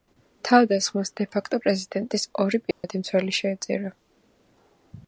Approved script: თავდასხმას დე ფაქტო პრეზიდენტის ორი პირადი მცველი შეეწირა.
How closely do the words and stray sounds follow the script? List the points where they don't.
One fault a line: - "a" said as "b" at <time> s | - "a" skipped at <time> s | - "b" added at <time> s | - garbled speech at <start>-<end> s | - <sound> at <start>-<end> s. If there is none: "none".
- dropout at 2.7-2.8 s